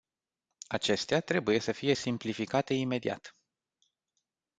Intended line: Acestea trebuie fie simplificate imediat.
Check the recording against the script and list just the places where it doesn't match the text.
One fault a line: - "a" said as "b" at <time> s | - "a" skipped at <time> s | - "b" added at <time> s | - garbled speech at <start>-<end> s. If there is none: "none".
- "să" added at 1.6 s